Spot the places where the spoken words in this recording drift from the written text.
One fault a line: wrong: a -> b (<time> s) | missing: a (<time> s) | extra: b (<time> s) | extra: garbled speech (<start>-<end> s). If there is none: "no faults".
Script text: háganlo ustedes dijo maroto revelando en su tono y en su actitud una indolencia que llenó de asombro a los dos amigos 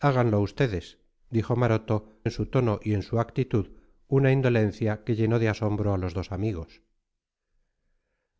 missing: revelando (2.1 s)